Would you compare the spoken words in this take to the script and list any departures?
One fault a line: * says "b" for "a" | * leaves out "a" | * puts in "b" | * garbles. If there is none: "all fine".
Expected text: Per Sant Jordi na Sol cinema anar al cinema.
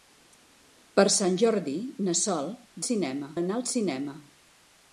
all fine